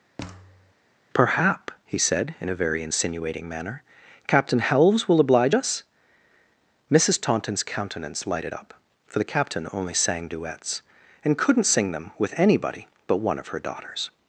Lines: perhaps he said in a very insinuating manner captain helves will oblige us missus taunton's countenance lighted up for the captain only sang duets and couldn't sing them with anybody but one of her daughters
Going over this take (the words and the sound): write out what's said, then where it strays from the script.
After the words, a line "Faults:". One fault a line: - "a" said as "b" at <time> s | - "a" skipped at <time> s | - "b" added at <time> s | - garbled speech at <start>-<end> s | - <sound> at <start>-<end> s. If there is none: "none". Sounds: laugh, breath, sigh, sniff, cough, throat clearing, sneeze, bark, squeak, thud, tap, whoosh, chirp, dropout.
perhaps he said in a very insinuating manner captain helves will oblige us missus taunton's countenance lighted up for the captain only sang duets and couldn't sing them with anybody but one of her daughters
Faults:
- thud at 0.2-0.7 s